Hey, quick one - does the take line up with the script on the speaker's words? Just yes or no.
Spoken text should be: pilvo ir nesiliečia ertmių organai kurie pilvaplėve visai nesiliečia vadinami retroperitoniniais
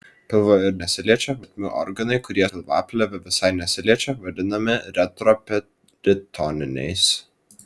yes